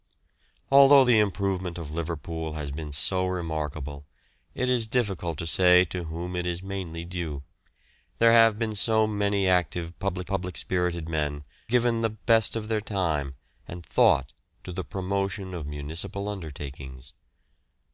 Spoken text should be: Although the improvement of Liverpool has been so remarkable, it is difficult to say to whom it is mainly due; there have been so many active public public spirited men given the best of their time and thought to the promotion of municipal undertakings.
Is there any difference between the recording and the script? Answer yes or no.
no